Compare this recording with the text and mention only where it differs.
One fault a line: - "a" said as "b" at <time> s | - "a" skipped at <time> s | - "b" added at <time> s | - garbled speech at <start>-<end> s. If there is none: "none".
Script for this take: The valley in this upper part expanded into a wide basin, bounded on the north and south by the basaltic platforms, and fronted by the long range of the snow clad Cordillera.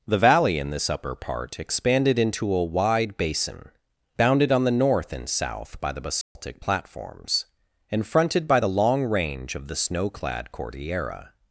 none